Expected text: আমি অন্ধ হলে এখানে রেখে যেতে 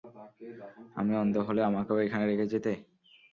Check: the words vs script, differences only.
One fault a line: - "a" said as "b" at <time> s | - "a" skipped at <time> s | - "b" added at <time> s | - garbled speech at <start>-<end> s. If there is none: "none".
- "আমাকেও" added at 1.6 s